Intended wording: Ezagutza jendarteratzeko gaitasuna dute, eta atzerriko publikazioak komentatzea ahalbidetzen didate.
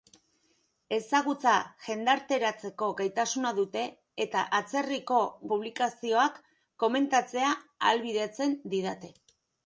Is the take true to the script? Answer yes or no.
yes